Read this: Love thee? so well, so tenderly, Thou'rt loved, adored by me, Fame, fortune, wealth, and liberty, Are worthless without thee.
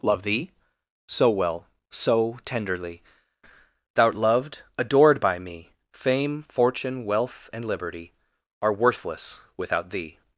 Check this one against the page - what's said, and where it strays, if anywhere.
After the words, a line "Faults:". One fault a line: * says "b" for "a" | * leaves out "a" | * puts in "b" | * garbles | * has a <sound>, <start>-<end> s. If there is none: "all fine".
Love thee? so well, so tenderly, Thou'rt loved, adored by me, Fame, fortune, wealth, and liberty, Are worthless without thee.
Faults:
all fine